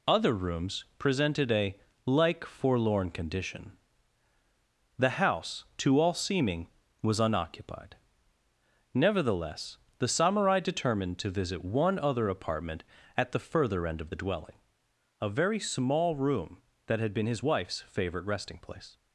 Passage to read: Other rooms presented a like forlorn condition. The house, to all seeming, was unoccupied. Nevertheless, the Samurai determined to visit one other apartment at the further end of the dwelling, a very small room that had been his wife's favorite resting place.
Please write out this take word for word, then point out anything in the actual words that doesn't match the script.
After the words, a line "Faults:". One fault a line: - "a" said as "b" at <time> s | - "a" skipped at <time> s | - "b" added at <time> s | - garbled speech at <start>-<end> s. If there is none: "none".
Other rooms presented a like forlorn condition. The house, to all seeming, was unoccupied. Nevertheless, the Samurai determined to visit one other apartment at the further end of the dwelling, a very small room that had been his wife's favorite resting place.
Faults:
none